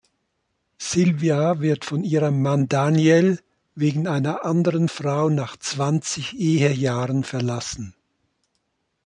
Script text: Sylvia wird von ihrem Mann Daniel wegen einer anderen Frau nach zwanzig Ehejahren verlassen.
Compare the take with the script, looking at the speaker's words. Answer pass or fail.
pass